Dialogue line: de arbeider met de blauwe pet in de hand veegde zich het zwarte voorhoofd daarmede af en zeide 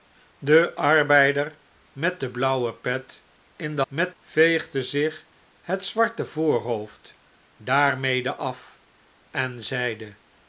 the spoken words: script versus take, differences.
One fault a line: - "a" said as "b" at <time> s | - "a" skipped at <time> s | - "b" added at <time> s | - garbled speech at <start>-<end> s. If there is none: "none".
- "hand" said as "met" at 3.9 s